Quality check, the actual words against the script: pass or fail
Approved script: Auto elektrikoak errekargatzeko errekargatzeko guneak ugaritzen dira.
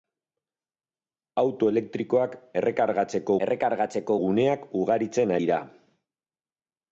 pass